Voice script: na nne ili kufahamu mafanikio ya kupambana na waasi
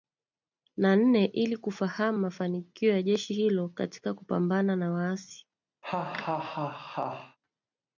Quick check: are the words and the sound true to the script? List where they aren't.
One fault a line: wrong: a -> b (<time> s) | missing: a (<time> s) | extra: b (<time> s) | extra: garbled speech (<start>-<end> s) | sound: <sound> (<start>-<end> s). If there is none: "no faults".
extra: jeshi hilo katika (3.0 s)
sound: laugh (5.8-7.4 s)